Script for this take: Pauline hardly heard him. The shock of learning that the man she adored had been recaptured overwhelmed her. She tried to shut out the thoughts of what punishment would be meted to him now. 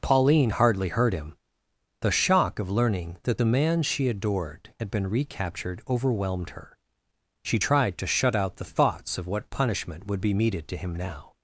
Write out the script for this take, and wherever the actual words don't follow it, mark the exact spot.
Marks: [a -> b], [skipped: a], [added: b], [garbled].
Pauline hardly heard him. The shock of learning that the man she adored had been recaptured overwhelmed her. She tried to shut out the thoughts of what punishment would be meted to him now.